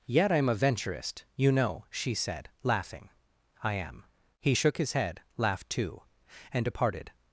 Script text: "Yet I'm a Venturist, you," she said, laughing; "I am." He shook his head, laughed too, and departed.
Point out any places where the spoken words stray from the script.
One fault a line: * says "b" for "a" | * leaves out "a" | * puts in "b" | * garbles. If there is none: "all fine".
* puts in "know"